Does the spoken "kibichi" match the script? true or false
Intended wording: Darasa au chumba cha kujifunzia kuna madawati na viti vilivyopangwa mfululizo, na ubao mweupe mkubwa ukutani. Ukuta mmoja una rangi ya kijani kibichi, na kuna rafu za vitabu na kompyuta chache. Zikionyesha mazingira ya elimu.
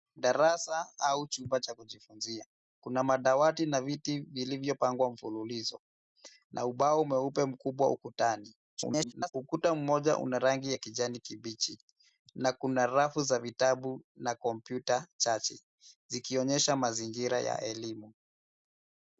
true